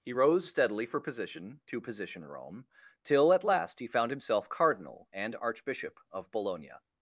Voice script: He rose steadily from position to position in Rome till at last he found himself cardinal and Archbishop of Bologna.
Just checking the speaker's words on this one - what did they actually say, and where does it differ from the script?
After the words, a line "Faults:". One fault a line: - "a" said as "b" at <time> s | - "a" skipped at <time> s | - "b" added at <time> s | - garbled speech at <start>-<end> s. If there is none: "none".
He rose steadily for position to position Rome till at last he found himself cardinal and Archbishop of Bologna.
Faults:
- "from" said as "for" at 0.9 s
- "in" skipped at 2.2 s